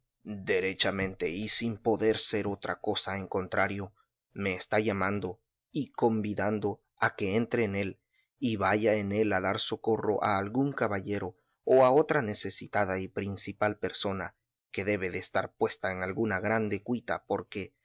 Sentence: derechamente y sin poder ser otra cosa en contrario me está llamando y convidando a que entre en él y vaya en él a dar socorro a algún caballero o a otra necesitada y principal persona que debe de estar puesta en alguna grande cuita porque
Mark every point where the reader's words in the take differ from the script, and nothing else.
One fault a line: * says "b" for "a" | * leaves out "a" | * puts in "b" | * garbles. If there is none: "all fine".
all fine